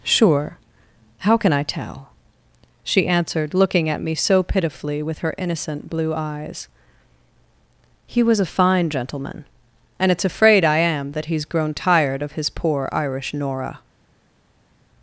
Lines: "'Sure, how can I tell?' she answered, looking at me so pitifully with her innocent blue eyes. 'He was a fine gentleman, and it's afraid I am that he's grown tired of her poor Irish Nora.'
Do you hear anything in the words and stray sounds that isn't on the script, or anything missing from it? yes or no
yes